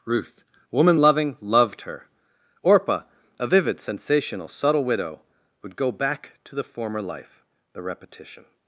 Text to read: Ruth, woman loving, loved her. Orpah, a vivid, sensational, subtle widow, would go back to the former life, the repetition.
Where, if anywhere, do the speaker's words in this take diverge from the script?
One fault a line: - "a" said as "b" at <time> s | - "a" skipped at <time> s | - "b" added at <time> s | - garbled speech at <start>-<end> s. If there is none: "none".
none